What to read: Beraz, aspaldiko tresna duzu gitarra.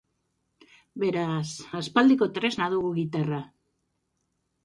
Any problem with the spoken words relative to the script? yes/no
yes